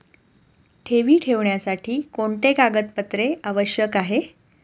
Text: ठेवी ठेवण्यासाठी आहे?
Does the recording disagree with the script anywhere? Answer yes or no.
yes